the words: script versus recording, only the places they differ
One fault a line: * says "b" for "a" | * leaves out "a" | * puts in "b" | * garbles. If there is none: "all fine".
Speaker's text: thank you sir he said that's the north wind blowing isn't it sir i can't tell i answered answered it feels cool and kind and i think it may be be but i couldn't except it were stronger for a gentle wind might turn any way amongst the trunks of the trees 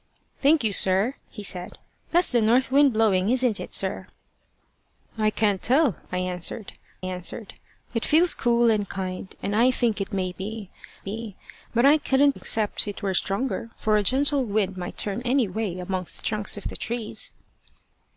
all fine